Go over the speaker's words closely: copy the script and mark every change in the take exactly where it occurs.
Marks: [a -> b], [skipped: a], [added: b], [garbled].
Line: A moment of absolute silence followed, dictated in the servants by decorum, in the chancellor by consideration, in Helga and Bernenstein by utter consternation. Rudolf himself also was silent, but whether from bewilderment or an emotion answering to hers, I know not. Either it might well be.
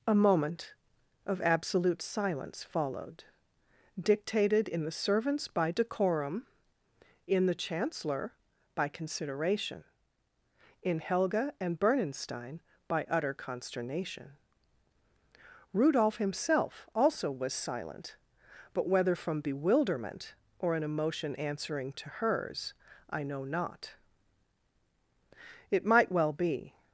A moment of absolute silence followed, dictated in the servants by decorum, in the chancellor by consideration, in Helga and Bernenstein by utter consternation. Rudolf himself also was silent, but whether from bewilderment or an emotion answering to hers, I know not. [skipped: Either] it might well be.